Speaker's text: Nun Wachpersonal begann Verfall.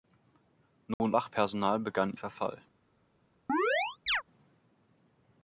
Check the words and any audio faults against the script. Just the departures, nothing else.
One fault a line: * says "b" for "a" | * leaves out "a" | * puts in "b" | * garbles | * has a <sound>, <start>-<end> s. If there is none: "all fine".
* has a dropout, 0.9-1.0 s
* has a chirp, 3.5-4.2 s